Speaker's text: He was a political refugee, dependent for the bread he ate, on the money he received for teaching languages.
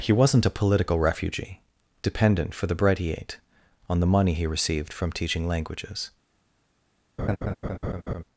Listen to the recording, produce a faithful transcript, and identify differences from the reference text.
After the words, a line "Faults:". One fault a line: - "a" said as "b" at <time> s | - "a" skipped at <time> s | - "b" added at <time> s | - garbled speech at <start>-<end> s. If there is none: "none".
He wasn't a political refugee, dependent for the bread he ate, on the money he received from teaching languages.
Faults:
- "was" said as "wasn't" at 0.1 s
- "for" said as "from" at 4.9 s